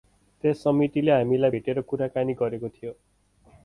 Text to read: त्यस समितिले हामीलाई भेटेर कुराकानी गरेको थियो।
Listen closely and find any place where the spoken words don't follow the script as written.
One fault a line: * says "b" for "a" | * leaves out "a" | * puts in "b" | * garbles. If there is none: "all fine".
all fine